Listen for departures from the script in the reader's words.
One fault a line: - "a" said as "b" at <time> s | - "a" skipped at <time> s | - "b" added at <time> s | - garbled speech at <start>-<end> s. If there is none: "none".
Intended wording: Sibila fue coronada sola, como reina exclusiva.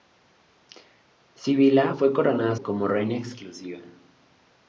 - "sola" skipped at 2.6 s